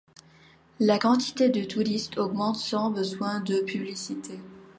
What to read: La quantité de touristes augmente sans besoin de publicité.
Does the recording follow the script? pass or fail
pass